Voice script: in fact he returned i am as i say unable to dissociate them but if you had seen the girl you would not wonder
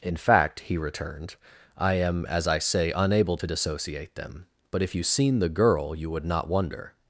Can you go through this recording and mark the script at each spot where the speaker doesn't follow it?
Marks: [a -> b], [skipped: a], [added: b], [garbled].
in fact he returned i am as i say unable to dissociate them but if you [skipped: had] seen the girl you would not wonder